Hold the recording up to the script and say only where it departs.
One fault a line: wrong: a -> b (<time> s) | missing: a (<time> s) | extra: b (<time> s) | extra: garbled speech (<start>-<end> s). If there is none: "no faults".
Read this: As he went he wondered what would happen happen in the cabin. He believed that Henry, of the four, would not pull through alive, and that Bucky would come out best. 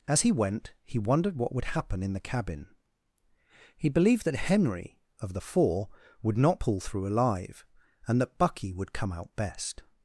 missing: happen (2.0 s)